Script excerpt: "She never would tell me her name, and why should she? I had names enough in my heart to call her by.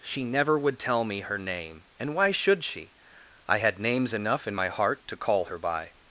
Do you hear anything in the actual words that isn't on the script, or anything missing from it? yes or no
no